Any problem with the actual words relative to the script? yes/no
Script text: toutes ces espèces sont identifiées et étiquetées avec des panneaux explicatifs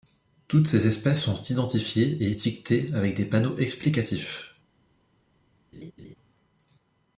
no